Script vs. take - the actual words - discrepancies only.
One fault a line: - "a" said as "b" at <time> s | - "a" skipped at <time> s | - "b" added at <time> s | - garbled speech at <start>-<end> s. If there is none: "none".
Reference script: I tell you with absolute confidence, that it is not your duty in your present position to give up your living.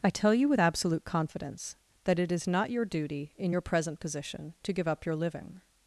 none